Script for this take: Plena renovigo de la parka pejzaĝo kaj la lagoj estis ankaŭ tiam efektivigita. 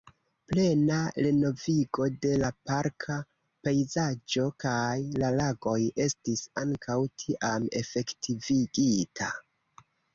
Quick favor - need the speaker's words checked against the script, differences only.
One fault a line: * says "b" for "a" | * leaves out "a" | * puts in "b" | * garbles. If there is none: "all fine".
all fine